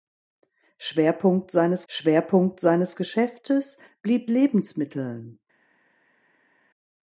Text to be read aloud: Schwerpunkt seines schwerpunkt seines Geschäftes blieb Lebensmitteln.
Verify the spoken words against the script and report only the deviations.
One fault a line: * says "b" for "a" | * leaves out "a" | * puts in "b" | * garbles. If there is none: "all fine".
all fine